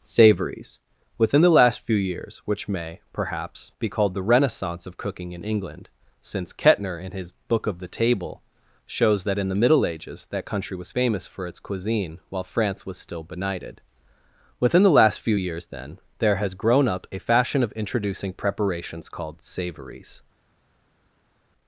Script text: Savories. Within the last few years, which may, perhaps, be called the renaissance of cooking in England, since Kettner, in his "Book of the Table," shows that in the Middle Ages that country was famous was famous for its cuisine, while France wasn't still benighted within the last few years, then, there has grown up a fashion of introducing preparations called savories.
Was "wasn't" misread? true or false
true